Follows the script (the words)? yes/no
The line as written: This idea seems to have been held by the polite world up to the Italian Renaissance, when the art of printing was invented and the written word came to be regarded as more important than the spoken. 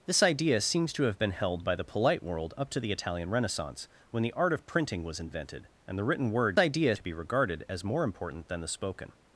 no